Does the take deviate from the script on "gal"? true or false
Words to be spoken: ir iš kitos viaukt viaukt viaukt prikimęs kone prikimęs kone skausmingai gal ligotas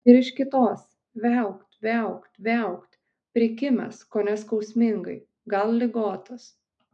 false